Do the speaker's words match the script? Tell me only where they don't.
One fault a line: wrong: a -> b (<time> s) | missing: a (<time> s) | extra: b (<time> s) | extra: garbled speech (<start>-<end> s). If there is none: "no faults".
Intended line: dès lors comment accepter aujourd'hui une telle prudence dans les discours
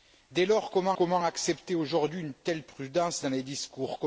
extra: comment (1.0 s)